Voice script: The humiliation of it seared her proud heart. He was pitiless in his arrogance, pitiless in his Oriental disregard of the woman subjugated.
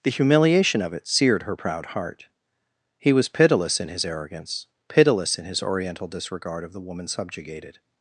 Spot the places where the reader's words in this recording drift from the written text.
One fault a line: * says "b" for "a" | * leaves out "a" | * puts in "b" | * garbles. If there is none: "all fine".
all fine